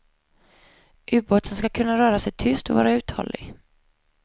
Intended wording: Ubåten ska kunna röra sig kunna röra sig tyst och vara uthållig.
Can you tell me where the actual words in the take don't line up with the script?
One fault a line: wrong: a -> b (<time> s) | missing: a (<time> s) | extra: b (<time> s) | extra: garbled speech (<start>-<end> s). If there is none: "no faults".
missing: kunna röra sig (2.3 s)